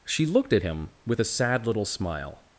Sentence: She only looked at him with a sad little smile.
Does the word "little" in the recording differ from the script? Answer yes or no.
no